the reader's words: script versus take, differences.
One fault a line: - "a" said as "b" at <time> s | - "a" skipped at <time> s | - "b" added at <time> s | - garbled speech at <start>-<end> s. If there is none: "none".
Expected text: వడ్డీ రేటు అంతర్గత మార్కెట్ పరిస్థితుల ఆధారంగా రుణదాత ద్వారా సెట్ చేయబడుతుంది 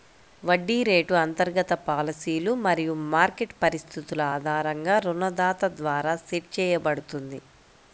- "పాలసీలు మరియు" added at 1.8 s